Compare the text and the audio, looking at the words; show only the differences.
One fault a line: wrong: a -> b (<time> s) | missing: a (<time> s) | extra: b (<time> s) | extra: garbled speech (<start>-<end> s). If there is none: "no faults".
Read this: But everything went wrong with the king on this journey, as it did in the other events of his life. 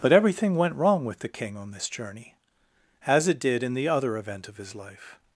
wrong: events -> event (4.2 s)